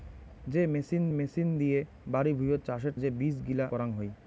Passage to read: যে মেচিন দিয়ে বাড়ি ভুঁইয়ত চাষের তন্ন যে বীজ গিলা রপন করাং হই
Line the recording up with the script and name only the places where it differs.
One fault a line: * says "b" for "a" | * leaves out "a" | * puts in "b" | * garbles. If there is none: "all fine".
* puts in "মেচিন"
* leaves out "তন্ন"
* leaves out "রপন"